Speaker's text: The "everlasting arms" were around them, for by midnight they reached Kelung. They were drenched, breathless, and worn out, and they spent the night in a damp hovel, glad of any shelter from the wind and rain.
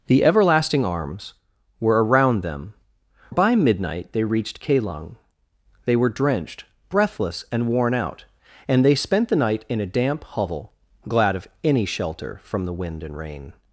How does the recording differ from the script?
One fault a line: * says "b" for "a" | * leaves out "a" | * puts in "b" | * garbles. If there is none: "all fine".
* leaves out "for"